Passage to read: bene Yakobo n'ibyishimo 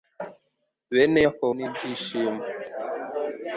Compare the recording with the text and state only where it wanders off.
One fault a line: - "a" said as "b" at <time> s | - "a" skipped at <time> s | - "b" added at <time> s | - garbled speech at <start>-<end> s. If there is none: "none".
none